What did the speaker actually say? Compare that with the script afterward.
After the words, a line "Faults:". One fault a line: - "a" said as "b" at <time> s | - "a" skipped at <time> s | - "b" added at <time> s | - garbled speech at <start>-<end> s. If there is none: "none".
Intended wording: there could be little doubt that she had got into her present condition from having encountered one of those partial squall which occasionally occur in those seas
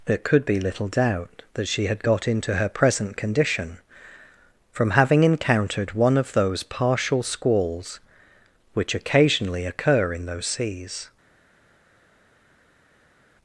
there could be little doubt that she had got into her present condition from having encountered one of those partial squalls which occasionally occur in those seas
Faults:
- "squall" said as "squalls" at 7.2 s